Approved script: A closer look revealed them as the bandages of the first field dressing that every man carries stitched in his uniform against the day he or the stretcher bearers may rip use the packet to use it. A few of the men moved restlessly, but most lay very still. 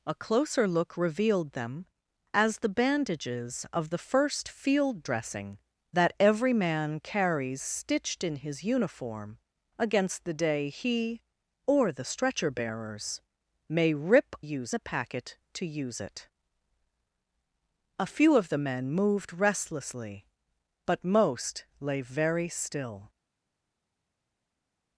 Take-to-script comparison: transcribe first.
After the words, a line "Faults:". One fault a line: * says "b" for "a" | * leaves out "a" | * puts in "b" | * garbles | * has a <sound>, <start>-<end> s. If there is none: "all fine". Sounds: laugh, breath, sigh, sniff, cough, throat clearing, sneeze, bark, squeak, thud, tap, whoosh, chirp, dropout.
A closer look revealed them as the bandages of the first field dressing that every man carries stitched in his uniform against the day he or the stretcher bearers may rip use the packet to use it. A few of the men moved restlessly, but most lay very still.
Faults:
all fine